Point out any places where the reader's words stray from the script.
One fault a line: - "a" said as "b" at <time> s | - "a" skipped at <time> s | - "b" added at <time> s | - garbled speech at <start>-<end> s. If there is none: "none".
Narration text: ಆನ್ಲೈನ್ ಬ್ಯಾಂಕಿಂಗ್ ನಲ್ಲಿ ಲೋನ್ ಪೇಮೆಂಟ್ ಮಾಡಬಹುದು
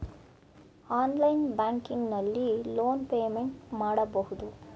none